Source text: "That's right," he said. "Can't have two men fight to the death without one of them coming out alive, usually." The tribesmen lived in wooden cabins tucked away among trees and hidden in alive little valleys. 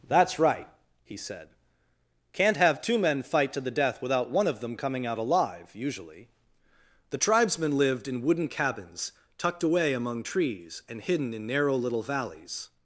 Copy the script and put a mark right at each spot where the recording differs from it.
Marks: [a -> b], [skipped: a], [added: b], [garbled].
"That's right," he said. "Can't have two men fight to the death without one of them coming out alive, usually." The tribesmen lived in wooden cabins tucked away among trees and hidden in [alive -> narrow] little valleys.